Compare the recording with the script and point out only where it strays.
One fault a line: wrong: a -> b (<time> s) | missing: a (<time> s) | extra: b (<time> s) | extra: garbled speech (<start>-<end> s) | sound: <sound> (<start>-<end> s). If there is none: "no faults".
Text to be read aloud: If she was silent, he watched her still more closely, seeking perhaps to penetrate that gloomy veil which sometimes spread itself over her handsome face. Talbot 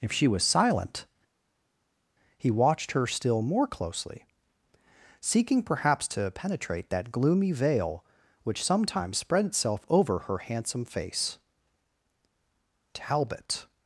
no faults